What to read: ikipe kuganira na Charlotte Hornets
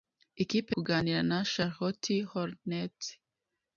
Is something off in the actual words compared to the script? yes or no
no